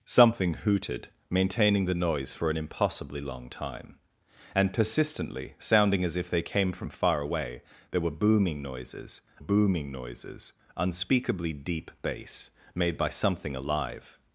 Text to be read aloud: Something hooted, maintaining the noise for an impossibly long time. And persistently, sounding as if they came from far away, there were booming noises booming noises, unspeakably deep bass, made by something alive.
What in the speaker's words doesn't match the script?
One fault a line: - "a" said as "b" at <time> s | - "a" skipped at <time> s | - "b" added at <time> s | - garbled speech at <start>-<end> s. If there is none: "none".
none